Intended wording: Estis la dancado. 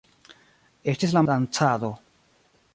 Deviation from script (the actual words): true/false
false